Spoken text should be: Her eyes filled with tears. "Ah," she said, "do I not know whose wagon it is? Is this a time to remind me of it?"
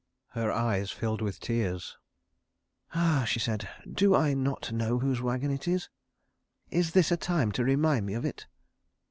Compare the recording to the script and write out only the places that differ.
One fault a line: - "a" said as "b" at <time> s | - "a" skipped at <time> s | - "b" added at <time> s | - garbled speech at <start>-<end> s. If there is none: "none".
none